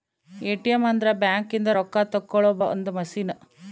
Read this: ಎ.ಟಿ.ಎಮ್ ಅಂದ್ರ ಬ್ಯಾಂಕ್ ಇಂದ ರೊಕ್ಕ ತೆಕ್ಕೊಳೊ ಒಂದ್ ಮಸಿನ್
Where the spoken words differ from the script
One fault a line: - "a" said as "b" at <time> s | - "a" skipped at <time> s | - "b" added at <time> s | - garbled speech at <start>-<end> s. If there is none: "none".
none